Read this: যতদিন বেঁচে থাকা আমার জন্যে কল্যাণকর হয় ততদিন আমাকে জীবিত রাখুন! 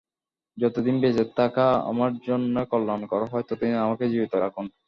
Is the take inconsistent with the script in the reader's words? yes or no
no